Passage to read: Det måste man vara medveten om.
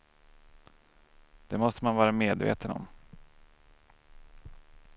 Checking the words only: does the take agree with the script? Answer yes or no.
yes